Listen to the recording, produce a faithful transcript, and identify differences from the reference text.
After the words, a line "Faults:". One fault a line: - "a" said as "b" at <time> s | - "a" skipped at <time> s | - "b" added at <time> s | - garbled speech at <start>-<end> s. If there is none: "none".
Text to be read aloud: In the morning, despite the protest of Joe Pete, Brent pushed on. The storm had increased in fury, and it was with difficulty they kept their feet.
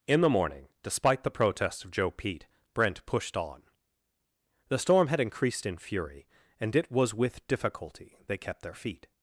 In the morning, despite the protests of Joe Pete, Brent pushed on. The storm had increased in fury, and it was with difficulty they kept their feet.
Faults:
- "protest" said as "protests" at 1.3 s